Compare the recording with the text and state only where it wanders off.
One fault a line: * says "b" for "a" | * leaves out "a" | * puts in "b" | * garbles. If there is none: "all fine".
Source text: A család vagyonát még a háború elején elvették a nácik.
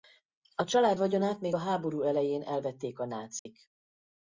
all fine